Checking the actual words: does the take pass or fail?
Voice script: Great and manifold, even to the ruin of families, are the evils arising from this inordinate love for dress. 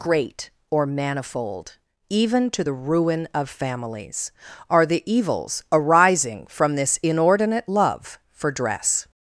fail